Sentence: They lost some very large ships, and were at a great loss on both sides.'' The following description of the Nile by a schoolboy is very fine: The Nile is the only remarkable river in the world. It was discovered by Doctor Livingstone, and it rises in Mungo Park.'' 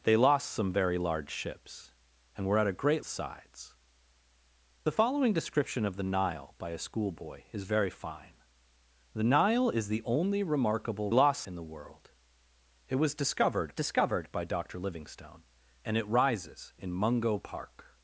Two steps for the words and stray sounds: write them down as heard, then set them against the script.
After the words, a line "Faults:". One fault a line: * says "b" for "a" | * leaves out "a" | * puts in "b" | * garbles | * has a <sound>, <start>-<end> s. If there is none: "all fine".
They lost some very large ships, and were at a great sides.'' The following description of the Nile by a schoolboy is very fine: The Nile is the only remarkable lost in the world. It was discovered discovered by Doctor Livingstone, and it rises in Mungo Park.''
Faults:
* leaves out "loss on both"
* says "lost" for "river"
* puts in "discovered"